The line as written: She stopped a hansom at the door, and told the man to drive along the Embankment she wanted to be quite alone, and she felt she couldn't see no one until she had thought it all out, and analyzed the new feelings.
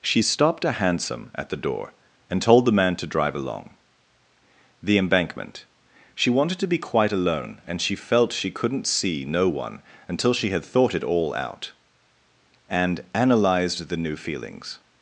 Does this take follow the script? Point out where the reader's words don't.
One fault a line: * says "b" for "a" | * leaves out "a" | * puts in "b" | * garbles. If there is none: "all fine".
all fine